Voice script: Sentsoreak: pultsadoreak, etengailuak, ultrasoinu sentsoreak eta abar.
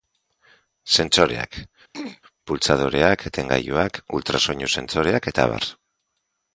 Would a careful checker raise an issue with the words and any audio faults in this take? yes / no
yes